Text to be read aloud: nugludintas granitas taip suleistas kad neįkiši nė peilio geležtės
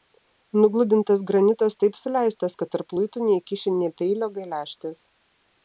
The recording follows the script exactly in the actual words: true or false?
false